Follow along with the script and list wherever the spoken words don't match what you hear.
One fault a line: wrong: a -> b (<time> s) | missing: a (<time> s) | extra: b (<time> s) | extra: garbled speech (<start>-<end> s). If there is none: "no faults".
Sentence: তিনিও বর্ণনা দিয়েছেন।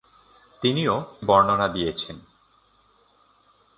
no faults